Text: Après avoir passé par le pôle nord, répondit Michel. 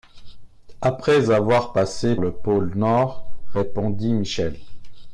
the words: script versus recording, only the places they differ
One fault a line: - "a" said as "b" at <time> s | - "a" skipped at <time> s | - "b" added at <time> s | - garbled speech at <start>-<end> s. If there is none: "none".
- "par" skipped at 2.1 s